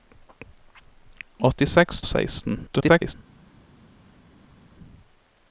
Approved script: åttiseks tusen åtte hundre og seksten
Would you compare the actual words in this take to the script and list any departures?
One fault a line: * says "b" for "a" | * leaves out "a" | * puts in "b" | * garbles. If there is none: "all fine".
* leaves out "tusen åtte hundre"
* garbles